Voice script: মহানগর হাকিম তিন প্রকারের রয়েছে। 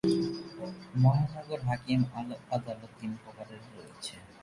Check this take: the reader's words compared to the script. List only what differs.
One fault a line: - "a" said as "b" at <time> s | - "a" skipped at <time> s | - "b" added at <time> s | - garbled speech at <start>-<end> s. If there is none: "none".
- "আদালত" added at 2.5 s